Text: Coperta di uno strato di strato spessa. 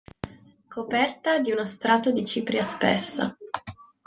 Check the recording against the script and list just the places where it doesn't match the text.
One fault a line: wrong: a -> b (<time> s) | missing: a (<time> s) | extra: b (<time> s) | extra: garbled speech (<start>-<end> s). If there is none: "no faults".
wrong: strato -> cipria (2.2 s)